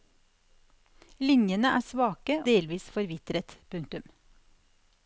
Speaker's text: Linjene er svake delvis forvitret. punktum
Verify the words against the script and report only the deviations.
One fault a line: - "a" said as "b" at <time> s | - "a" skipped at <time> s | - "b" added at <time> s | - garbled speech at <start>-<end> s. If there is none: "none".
none